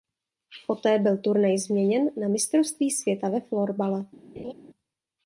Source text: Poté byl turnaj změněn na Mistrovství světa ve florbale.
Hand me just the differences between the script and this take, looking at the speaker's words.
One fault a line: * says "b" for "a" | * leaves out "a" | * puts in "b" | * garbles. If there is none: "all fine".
all fine